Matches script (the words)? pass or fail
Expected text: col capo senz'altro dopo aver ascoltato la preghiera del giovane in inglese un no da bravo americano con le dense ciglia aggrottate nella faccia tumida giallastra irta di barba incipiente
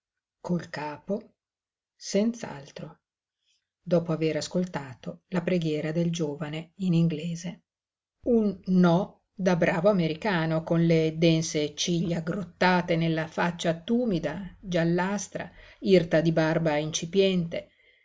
pass